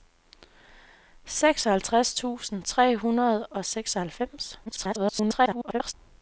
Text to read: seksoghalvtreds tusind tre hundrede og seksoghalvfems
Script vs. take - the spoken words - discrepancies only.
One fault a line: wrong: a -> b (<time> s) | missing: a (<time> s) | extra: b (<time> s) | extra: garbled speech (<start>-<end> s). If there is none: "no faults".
extra: garbled speech (4.7-5.9 s)